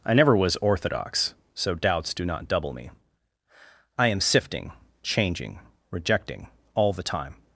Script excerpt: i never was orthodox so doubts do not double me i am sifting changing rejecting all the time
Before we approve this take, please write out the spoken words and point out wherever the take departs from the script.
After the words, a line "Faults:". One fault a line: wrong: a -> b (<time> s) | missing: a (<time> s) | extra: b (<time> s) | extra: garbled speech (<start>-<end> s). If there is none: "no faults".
i never was orthodox so doubts do not double me i am sifting changing rejecting all the time
Faults:
no faults